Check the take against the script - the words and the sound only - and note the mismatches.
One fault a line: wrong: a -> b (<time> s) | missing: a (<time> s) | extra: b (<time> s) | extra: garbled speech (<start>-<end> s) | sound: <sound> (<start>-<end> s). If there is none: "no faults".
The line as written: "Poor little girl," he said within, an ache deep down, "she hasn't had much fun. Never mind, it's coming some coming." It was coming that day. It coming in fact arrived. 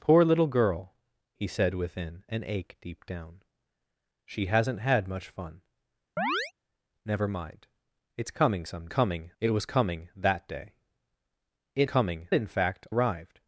sound: chirp (6.2-6.5 s)